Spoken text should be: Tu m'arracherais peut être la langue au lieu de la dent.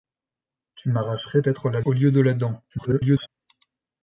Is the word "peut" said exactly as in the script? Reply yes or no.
no